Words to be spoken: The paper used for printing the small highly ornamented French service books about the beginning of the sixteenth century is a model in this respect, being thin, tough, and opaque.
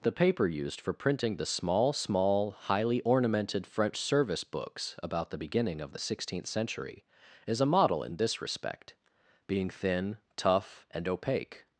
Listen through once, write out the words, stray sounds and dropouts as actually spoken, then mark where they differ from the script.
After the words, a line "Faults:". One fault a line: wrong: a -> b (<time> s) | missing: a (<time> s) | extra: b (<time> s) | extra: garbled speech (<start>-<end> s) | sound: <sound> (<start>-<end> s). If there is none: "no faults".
The paper used for printing the small small highly ornamented French service books about the beginning of the sixteenth century is a model in this respect, being thin, tough, and opaque.
Faults:
extra: small (1.9 s)